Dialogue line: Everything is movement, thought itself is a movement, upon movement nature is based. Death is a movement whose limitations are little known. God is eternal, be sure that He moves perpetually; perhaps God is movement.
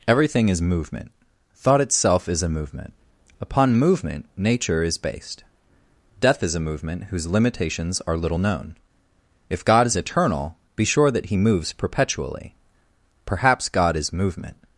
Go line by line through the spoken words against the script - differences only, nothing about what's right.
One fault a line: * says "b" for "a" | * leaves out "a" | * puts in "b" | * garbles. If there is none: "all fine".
* puts in "If"